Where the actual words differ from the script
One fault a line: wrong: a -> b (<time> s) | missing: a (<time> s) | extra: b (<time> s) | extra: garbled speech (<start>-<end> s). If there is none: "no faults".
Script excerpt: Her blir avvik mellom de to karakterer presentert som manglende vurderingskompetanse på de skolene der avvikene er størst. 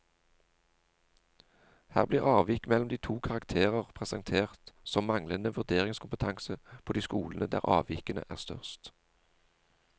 no faults